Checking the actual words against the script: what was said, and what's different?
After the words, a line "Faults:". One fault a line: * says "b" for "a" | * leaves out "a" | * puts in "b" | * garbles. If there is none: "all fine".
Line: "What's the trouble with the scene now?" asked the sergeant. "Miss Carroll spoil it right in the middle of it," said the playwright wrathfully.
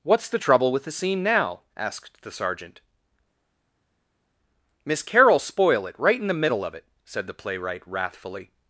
"What's the trouble with the scene now?" asked the sergeant. "Miss Carroll spoil it right in the middle of it," said the playwright wrathfully.
Faults:
all fine